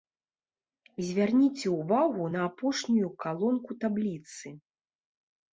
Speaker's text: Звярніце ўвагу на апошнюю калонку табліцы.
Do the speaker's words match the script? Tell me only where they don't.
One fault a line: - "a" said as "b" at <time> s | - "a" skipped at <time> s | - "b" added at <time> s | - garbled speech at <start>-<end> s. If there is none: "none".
none